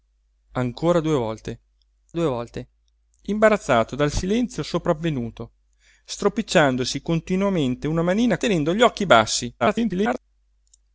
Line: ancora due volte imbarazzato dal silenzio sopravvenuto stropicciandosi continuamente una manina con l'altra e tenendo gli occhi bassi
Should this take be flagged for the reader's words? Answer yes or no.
yes